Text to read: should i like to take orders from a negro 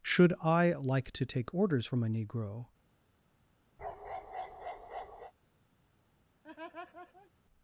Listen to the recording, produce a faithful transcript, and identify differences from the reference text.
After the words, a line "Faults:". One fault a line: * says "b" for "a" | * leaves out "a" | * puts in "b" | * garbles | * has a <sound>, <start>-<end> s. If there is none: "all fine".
should i like to take orders from a negro
Faults:
* has a bark, 3.8-5.3 s
* has a laugh, 6.4-7.3 s